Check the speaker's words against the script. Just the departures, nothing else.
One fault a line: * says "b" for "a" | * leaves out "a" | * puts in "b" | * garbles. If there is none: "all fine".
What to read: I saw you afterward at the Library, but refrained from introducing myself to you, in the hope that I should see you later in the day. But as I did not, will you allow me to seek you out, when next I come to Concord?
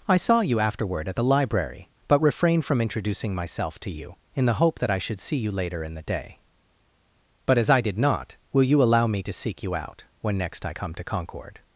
all fine